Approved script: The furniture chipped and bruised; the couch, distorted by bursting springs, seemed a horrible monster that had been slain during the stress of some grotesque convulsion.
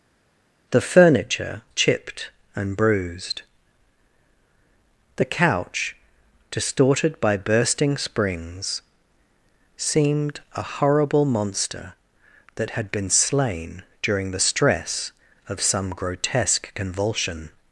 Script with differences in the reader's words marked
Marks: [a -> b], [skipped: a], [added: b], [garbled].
The furniture chipped and bruised; the couch, distorted by bursting springs, seemed a horrible monster that had been slain during the stress of some grotesque convulsion.